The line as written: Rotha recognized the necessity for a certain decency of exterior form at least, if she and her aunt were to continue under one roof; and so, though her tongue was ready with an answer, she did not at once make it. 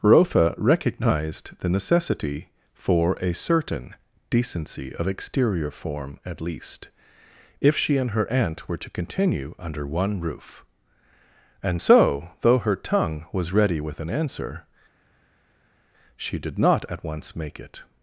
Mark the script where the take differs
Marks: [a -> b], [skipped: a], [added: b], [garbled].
Rotha recognized the necessity for a certain decency of exterior form at least, if she and her aunt were to continue under one roof; and so, though her tongue was ready with an answer, she did not at once make it.